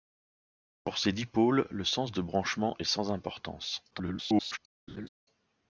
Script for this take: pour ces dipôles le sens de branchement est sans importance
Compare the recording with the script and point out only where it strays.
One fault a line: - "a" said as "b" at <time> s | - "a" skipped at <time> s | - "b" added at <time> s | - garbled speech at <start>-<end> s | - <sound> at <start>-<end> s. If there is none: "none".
- garbled speech at 3.9-4.6 s
- laugh at 4.9-5.1 s